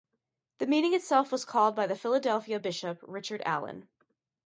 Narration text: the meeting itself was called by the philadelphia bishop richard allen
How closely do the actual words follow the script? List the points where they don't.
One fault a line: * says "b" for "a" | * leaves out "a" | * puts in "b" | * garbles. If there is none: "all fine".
all fine